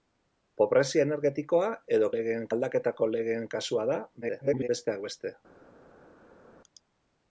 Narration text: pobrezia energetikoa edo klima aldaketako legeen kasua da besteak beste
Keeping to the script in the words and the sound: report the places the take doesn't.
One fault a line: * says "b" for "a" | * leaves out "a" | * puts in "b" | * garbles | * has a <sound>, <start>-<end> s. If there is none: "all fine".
* says "legeen" for "klima"
* garbles